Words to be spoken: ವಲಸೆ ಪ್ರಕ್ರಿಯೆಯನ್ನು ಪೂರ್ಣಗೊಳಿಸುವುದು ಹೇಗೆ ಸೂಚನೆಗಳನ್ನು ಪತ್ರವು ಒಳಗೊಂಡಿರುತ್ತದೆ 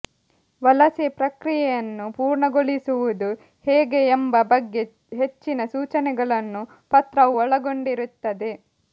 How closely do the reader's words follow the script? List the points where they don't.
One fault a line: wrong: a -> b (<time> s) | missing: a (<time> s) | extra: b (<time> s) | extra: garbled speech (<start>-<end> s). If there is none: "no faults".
extra: ಎಂಬ ಬಗ್ಗೆ ಹೆಚ್ಚಿನ (4.1 s)